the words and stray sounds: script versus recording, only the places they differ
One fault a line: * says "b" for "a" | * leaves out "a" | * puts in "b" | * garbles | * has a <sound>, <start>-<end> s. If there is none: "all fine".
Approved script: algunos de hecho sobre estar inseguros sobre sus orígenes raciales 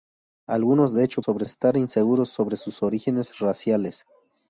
all fine